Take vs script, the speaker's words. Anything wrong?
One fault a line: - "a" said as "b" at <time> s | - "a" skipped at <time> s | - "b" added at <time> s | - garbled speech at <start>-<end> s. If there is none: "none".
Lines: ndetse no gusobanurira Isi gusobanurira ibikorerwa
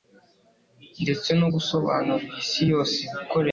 - "gusobanurira" said as "yose" at 2.7 s